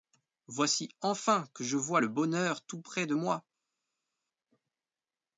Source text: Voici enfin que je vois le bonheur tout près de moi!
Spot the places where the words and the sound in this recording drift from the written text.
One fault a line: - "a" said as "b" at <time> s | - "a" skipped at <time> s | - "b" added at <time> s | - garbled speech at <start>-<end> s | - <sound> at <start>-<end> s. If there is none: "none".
none